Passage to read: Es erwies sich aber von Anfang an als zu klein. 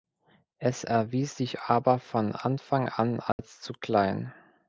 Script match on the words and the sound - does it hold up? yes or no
no